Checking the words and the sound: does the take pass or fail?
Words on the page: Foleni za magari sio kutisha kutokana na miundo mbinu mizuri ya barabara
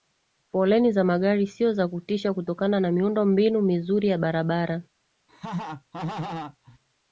fail